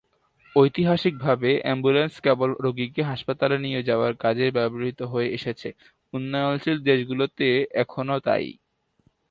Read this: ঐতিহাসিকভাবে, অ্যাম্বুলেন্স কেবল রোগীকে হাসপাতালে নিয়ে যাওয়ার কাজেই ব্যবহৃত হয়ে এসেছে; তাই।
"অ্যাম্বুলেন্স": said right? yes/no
yes